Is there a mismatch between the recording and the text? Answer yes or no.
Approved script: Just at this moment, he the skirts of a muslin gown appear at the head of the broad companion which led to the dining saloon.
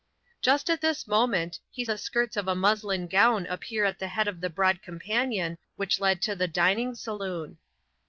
no